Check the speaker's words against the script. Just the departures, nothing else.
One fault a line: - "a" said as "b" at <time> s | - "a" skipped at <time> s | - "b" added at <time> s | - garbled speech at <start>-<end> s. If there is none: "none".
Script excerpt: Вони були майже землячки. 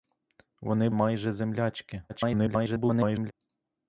- "були" skipped at 0.9 s
- garbled speech at 2.1-3.3 s